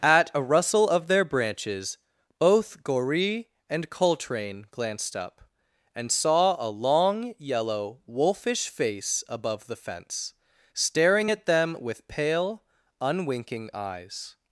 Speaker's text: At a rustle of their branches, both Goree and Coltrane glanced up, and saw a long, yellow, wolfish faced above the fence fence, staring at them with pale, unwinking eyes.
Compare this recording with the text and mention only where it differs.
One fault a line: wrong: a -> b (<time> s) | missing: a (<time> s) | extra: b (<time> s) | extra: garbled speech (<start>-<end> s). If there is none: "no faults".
wrong: faced -> face (8.7 s)
missing: fence (10.3 s)